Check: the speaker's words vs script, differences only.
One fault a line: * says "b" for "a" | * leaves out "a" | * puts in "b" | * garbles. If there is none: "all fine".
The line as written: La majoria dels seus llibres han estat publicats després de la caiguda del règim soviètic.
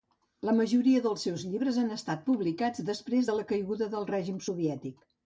all fine